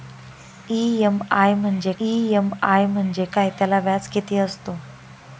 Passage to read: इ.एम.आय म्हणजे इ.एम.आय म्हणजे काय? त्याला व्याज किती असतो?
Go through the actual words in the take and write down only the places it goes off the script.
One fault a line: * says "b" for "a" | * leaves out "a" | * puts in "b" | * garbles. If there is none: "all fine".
all fine